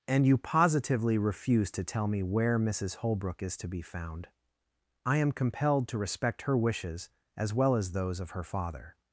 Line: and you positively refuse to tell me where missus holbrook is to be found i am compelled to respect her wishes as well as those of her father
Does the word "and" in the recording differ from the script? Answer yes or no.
no